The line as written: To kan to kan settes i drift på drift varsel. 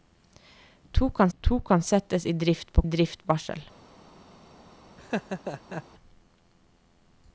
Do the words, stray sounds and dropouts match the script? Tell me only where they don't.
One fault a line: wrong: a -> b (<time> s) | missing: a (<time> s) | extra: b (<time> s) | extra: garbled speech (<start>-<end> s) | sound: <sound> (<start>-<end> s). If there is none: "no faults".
sound: laugh (5.0-5.8 s)